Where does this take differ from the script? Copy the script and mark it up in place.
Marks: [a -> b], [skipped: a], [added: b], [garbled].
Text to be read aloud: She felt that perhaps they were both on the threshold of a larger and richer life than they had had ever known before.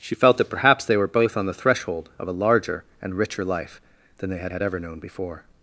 She felt that perhaps they were both on the threshold of a larger and richer life than they had had ever known before.